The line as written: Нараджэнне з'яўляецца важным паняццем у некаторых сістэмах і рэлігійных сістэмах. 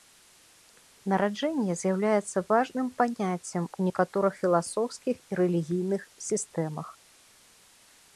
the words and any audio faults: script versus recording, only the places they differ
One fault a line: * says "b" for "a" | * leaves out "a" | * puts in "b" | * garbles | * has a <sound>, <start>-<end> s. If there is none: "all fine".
* says "філасофскіх" for "сістэмах"